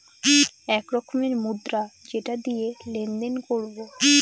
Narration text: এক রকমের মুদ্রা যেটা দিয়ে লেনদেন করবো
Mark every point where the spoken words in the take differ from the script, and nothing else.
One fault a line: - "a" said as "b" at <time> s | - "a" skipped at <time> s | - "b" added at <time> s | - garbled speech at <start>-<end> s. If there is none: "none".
none